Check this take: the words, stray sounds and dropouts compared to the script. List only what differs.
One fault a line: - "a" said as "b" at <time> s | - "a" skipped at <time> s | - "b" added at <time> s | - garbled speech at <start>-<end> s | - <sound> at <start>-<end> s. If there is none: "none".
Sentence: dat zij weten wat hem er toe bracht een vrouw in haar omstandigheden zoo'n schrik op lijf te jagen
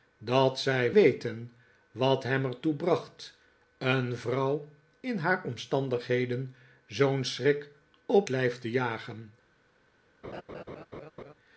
- laugh at 10.2-11.3 s